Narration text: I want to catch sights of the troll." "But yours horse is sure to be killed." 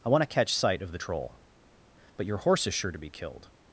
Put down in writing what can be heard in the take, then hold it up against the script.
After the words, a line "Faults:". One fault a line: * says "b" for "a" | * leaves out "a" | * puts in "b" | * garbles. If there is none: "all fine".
I want to catch sight of the troll." "But your horse is sure to be killed."
Faults:
* says "sight" for "sights"
* says "your" for "yours"